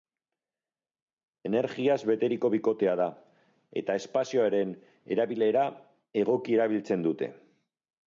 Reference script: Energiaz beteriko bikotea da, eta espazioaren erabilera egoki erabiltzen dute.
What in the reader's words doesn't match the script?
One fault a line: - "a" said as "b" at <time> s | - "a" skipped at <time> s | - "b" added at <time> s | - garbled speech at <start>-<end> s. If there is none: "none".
none